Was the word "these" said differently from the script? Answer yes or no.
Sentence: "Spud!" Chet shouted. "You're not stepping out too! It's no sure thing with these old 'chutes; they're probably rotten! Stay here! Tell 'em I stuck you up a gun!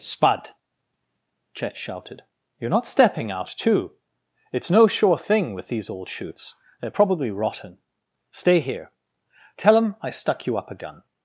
no